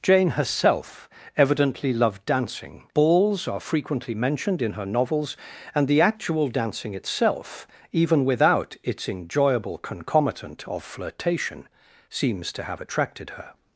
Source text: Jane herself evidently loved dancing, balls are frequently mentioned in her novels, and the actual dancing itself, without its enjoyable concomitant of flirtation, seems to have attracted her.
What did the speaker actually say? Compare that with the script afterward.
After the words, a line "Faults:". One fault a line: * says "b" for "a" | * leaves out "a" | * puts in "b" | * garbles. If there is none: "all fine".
Jane herself evidently loved dancing, balls are frequently mentioned in her novels, and the actual dancing itself, even without its enjoyable concomitant of flirtation, seems to have attracted her.
Faults:
* puts in "even"